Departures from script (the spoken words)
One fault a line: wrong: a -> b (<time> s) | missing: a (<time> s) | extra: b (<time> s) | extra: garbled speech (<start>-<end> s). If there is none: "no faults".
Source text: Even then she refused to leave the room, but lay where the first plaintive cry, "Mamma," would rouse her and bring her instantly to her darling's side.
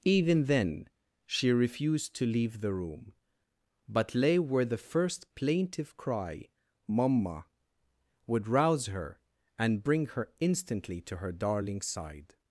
no faults